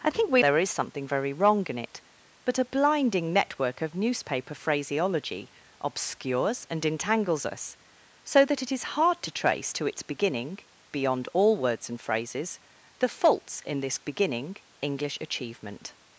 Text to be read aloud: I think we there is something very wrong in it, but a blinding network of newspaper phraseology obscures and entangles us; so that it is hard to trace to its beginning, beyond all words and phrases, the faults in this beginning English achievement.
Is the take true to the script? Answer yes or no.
yes